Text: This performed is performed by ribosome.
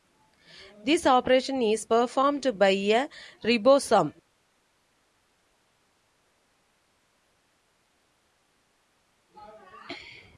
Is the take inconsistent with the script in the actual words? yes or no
yes